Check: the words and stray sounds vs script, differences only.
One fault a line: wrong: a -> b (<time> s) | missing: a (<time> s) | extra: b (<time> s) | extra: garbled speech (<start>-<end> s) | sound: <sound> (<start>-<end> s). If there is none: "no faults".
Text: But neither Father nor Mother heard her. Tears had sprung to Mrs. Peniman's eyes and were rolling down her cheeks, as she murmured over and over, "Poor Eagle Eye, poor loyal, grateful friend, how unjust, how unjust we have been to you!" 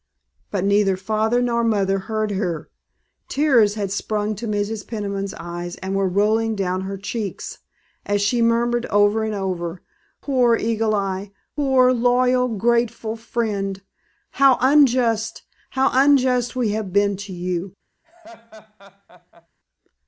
sound: laugh (18.0-19.5 s)